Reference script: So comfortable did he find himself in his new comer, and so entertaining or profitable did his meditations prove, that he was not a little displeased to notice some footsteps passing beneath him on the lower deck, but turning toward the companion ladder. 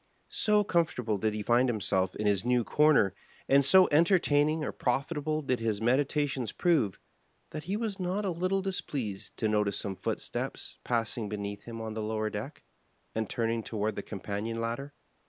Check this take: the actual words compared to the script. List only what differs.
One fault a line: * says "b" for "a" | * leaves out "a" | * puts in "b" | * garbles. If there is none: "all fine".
* says "and" for "but"